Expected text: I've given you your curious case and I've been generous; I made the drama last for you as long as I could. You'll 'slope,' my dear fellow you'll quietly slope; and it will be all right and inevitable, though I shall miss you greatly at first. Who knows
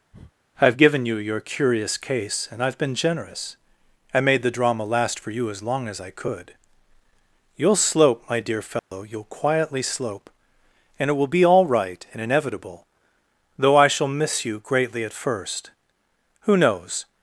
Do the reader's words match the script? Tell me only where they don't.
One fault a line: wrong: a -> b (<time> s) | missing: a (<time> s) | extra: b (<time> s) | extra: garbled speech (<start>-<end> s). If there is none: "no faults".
no faults